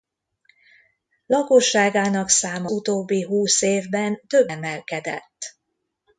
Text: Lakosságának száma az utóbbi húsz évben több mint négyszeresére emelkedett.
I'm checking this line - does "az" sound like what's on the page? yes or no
no